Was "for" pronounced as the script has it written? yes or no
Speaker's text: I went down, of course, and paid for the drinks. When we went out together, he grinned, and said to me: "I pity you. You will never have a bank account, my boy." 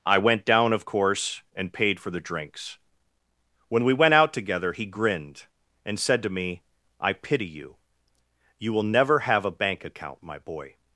yes